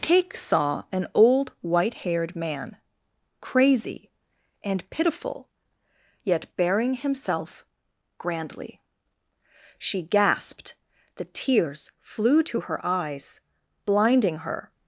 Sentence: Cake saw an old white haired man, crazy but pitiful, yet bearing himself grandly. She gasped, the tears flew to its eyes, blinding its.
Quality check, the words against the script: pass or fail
fail